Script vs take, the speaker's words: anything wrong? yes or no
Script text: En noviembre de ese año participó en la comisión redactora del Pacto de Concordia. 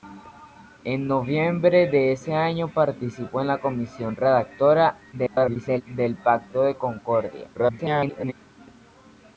yes